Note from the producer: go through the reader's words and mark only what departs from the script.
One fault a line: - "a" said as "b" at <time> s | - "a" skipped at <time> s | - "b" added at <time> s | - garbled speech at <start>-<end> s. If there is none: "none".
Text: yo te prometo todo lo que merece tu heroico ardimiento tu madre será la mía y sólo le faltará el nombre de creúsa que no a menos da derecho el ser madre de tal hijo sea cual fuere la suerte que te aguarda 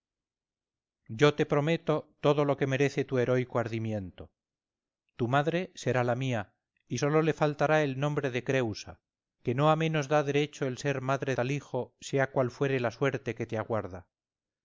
- "de" skipped at 11.3 s